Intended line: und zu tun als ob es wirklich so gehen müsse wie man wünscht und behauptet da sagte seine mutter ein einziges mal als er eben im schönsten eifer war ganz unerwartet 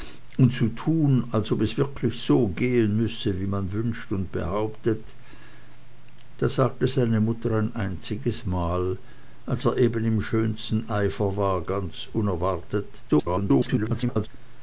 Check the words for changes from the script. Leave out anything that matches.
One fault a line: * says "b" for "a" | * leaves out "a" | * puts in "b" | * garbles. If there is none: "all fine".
* garbles